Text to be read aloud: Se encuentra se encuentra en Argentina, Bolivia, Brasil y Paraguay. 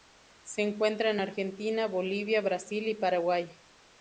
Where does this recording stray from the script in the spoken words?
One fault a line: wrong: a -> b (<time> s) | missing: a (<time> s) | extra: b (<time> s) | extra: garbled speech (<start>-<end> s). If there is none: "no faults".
missing: se encuentra (1.1 s)